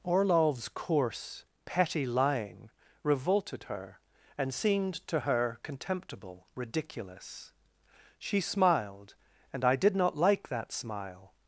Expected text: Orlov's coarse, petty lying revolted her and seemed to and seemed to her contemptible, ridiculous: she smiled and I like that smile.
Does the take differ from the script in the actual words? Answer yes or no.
yes